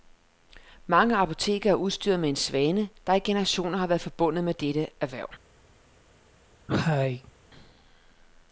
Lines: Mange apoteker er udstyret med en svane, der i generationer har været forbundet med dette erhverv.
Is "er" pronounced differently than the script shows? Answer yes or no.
no